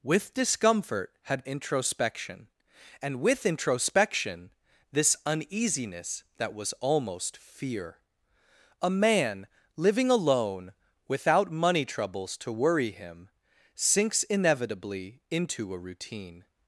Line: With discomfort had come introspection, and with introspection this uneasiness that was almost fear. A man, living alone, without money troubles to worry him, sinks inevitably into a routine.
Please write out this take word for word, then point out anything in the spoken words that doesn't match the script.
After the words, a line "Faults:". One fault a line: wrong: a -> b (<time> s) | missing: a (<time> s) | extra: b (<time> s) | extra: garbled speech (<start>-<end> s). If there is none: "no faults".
With discomfort had introspection, and with introspection this uneasiness that was almost fear. A man, living alone, without money troubles to worry him, sinks inevitably into a routine.
Faults:
missing: come (1.4 s)